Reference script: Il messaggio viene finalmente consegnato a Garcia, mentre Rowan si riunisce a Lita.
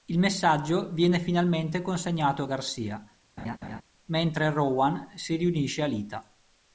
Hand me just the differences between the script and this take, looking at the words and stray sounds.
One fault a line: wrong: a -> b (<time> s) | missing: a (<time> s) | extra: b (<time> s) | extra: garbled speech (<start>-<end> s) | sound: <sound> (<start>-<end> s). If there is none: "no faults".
sound: laugh (3.4-3.8 s)